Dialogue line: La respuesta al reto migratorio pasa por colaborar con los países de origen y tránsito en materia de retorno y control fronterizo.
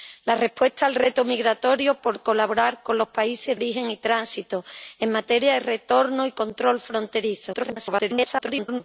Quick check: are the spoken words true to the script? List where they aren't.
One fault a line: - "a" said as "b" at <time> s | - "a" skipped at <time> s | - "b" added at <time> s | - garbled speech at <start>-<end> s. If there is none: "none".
- "pasa" skipped at 2.0 s
- "de" skipped at 3.6 s
- garbled speech at 7.5-8.8 s